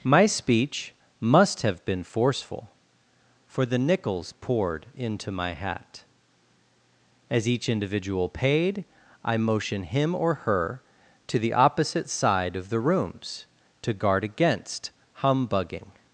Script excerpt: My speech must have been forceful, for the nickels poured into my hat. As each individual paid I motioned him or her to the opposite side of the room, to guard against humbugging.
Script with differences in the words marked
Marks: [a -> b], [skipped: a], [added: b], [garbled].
My speech must have been forceful, for the nickels poured into my hat. As each individual paid I [motioned -> motion] him or her to the opposite side of the [room, -> rooms] to guard against humbugging.